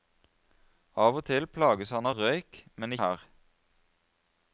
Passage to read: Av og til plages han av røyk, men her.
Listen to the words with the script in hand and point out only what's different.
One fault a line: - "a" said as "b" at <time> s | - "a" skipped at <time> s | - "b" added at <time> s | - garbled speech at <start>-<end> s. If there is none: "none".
none